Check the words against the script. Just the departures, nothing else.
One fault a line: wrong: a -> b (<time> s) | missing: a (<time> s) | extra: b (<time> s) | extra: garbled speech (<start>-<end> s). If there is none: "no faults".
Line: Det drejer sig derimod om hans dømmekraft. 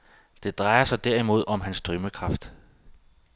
no faults